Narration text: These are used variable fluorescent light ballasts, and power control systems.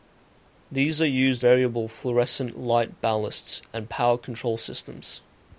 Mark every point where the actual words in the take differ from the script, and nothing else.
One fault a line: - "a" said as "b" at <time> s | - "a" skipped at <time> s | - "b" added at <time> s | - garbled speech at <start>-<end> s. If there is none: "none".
none